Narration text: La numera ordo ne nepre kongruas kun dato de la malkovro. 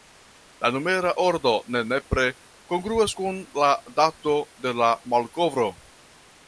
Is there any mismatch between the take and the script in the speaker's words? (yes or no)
yes